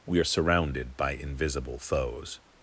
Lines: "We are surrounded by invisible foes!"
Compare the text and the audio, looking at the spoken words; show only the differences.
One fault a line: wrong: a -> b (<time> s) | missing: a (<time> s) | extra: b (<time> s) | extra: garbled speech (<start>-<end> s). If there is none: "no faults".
no faults